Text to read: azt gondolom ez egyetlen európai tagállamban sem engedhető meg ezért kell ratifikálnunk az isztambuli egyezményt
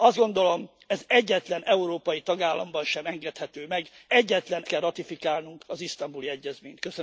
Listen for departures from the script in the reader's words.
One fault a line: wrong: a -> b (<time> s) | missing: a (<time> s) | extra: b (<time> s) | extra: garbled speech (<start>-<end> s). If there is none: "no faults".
wrong: ezért -> egyetlen (4.1 s)